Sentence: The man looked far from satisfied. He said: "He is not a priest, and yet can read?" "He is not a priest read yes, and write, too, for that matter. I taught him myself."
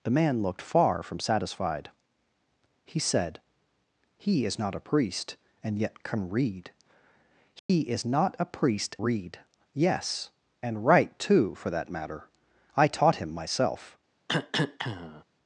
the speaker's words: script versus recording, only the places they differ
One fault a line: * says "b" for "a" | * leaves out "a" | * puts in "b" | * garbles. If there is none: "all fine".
all fine